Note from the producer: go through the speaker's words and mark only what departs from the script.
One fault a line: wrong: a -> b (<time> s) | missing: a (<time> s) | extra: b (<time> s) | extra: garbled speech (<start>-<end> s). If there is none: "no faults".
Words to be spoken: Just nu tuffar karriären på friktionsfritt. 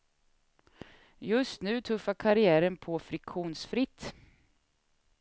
no faults